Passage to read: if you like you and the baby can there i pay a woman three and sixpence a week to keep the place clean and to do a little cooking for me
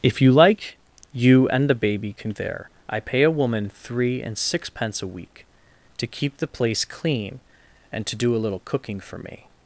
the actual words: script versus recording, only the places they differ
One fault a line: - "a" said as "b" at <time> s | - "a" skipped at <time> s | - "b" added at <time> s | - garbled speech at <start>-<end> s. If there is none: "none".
none